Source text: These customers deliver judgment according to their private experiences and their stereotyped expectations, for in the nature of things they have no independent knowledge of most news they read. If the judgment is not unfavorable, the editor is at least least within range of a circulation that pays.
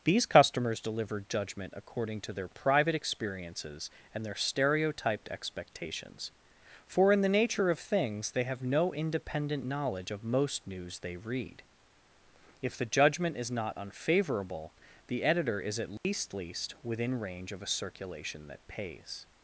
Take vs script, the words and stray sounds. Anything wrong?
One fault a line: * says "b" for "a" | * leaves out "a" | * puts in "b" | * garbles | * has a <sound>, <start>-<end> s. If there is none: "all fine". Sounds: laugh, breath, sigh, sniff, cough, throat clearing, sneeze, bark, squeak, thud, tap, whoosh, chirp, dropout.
* has a dropout, 16.0-16.0 s